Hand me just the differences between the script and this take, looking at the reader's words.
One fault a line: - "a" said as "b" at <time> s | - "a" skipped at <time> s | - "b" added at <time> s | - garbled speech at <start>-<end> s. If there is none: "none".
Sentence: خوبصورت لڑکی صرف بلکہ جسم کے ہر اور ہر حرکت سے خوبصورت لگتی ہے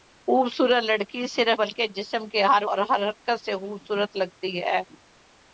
none